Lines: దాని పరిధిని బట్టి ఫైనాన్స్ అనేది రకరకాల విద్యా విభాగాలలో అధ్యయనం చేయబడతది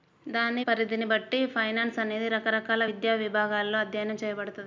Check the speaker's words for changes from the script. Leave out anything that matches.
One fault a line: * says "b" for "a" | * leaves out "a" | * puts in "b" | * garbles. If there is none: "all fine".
all fine